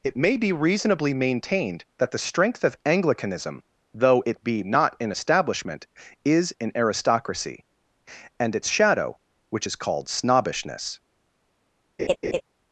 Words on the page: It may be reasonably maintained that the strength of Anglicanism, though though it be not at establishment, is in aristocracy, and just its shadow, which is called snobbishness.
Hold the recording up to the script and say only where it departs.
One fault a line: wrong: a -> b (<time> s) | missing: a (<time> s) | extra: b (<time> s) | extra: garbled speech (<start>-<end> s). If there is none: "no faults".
missing: though (4.2 s)
wrong: at -> in (5.0 s)
missing: just (8.6 s)